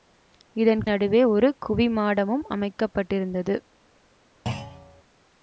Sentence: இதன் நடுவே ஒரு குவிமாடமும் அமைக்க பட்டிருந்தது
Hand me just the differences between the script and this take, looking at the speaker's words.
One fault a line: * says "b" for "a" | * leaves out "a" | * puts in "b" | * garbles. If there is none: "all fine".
all fine